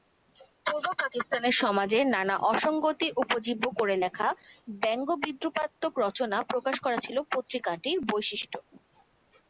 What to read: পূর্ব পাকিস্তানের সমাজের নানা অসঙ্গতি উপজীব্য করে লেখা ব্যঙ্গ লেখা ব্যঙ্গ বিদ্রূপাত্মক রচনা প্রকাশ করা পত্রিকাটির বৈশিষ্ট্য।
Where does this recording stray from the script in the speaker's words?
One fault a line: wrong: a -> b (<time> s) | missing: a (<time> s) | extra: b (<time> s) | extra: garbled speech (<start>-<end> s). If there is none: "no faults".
missing: লেখা ব্যঙ্গ (5.1 s)
extra: ছিল (7.0 s)